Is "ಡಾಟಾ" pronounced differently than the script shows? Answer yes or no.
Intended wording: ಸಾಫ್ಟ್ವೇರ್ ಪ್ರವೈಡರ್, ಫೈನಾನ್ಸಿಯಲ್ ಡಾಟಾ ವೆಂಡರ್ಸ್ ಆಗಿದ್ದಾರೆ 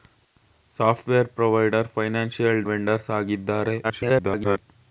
yes